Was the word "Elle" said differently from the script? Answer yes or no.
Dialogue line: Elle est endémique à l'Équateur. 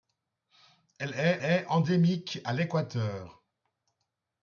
no